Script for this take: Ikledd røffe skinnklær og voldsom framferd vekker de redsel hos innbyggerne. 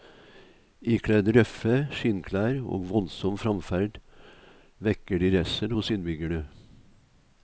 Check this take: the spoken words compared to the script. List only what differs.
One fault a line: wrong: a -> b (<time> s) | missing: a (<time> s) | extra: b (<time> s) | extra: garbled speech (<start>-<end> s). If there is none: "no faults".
no faults